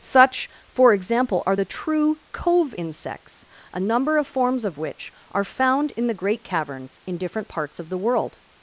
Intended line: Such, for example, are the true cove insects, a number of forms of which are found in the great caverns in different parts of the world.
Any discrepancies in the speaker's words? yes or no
no